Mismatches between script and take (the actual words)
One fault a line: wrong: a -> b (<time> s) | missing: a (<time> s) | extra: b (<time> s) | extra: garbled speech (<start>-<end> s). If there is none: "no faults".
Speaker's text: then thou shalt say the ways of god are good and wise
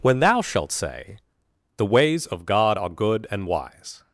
wrong: then -> when (0.0 s)